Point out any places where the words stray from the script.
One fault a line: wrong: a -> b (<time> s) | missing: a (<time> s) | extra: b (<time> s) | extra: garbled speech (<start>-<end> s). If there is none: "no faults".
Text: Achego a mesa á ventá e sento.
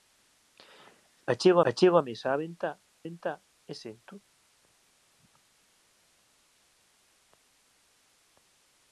extra: achego (1.7 s)
extra: ventá (3.1 s)